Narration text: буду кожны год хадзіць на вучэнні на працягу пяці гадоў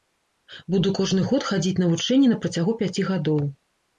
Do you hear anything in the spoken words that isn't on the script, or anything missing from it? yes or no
no